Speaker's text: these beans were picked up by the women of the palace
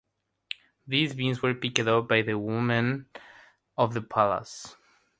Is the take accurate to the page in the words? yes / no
yes